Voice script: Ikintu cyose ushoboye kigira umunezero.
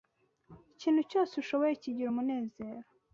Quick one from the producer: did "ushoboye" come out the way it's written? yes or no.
yes